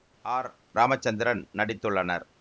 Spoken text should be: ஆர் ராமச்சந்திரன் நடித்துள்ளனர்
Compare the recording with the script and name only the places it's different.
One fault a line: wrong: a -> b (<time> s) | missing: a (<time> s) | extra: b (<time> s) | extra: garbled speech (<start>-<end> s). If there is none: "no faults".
no faults